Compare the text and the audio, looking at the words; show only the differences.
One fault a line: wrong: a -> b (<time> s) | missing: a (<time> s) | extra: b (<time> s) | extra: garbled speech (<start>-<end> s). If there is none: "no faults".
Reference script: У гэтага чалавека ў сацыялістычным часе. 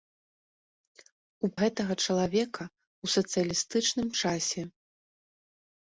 no faults